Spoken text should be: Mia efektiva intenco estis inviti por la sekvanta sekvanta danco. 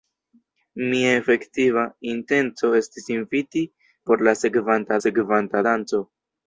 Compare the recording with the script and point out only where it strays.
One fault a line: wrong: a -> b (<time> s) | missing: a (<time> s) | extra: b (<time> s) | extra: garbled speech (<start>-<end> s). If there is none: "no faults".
no faults